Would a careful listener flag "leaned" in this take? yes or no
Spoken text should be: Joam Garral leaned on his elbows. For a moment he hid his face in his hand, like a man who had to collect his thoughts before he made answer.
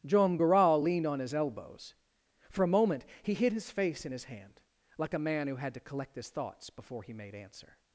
no